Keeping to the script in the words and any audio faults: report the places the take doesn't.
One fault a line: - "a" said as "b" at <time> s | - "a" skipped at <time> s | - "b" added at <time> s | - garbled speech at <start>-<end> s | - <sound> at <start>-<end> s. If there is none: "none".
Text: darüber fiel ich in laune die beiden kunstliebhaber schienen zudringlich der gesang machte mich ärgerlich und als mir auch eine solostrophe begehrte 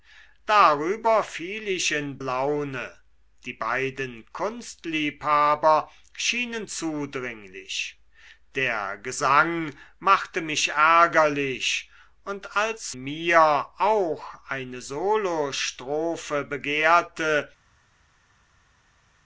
none